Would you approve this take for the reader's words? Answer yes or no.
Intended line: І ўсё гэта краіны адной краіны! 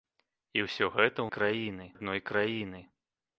yes